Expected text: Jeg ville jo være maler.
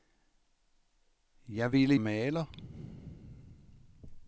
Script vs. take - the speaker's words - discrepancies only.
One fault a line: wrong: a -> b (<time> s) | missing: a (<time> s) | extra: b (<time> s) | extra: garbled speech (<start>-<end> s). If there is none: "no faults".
missing: jo være (1.9 s)